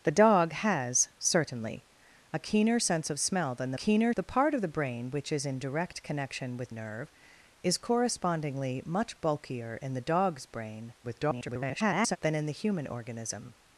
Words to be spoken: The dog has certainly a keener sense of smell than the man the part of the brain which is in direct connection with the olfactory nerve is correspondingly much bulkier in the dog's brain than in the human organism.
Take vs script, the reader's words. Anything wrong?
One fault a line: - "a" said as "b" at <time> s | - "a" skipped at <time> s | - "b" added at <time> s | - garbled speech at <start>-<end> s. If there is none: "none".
- "man" said as "keener" at 3.7 s
- "the olfactory" skipped at 6.7 s
- garbled speech at 11.0-12.2 s